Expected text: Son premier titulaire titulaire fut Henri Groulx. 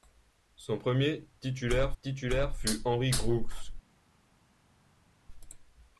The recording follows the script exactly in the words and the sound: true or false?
true